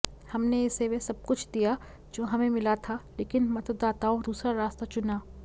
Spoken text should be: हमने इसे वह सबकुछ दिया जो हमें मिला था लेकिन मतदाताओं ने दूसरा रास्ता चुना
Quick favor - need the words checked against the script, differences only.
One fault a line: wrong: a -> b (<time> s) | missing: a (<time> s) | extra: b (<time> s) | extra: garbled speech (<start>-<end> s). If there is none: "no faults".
missing: ने (4.2 s)